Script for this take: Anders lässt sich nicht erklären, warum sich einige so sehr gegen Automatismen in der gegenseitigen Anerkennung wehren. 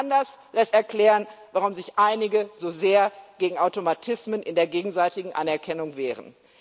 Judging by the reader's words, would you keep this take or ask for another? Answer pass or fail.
fail